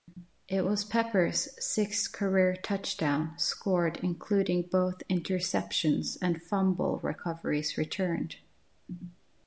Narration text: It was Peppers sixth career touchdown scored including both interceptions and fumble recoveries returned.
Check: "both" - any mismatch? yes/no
no